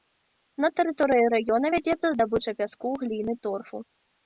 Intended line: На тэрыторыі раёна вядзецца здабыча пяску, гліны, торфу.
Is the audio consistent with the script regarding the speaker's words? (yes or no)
yes